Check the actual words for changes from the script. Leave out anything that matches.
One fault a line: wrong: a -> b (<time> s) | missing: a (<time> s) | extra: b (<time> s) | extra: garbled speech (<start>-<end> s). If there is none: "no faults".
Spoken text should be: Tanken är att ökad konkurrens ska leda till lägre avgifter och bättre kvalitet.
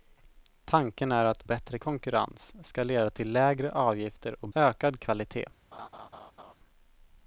wrong: ökad -> bättre (1.4 s)
wrong: bättre -> ökad (4.5 s)